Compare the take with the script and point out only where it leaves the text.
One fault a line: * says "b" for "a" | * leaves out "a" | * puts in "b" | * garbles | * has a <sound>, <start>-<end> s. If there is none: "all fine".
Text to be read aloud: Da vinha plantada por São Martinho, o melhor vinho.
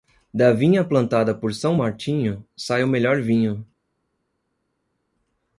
* puts in "sai"